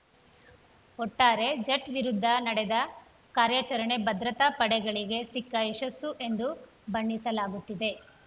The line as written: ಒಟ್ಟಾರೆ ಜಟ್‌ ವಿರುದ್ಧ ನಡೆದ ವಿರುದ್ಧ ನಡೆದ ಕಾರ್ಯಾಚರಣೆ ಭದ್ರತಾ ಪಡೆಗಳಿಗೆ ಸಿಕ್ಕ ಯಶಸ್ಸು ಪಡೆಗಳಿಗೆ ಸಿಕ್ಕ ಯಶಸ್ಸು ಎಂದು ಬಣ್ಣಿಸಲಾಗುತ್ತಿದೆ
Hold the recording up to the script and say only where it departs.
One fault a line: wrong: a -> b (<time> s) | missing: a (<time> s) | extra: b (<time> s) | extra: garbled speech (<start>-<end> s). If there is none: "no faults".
missing: ವಿರುದ್ಧ ನಡೆದ (2.8 s)
missing: ಪಡೆಗಳಿಗೆ ಸಿಕ್ಕ ಯಶಸ್ಸು (6.1 s)